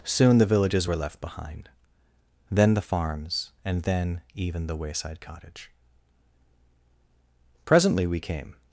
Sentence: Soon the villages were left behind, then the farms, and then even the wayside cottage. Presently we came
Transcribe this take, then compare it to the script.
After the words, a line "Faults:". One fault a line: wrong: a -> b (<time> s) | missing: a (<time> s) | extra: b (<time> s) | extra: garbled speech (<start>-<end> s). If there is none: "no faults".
Soon the villages were left behind, then the farms, and then even the wayside cottage. Presently we came
Faults:
no faults